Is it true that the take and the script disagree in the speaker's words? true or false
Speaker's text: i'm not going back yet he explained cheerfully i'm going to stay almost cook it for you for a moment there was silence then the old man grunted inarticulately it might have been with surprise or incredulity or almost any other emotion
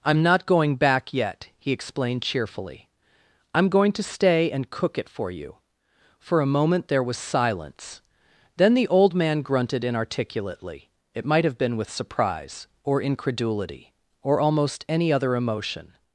true